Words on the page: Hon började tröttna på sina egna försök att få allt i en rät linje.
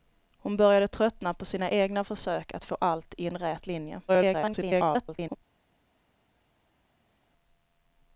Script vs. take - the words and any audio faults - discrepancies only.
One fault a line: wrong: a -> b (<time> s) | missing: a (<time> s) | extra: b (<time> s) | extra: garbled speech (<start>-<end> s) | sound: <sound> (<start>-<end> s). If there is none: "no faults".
extra: garbled speech (4.1-5.4 s)